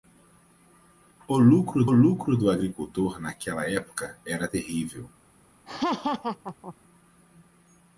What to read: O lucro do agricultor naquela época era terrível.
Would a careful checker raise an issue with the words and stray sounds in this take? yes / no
yes